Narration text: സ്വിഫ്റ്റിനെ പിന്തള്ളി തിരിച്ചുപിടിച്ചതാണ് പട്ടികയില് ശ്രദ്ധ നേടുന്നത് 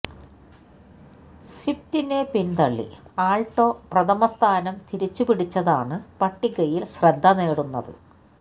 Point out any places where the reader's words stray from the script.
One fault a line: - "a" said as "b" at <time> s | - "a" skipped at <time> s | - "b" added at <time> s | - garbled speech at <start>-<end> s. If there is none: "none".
- "ആള്ട്ടോ പ്രഥമ സ്ഥാനം" added at 3.2 s